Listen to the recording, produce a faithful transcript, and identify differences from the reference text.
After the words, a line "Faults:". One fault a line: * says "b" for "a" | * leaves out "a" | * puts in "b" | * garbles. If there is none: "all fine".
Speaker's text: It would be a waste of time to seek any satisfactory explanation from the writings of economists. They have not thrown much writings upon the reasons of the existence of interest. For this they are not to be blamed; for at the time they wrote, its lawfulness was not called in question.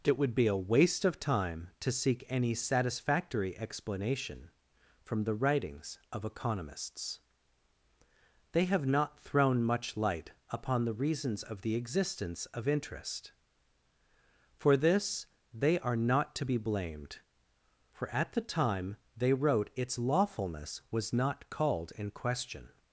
It would be a waste of time to seek any satisfactory explanation from the writings of economists. They have not thrown much light upon the reasons of the existence of interest. For this they are not to be blamed; for at the time they wrote, its lawfulness was not called in question.
Faults:
* says "light" for "writings"